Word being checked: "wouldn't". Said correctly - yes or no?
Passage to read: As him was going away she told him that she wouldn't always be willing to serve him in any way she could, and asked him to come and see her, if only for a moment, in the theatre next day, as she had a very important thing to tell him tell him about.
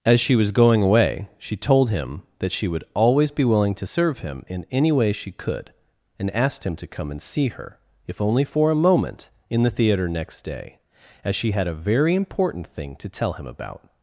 no